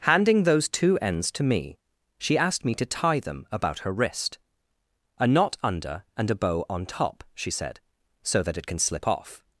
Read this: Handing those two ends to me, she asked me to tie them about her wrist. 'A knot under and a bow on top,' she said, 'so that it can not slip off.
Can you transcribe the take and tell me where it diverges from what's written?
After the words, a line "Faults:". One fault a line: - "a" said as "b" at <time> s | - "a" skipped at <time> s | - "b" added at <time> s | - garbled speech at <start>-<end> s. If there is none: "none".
Handing those two ends to me, she asked me to tie them about her wrist. 'A knot under and a bow on top,' she said, 'so that it can slip off.
Faults:
- "not" skipped at 8.8 s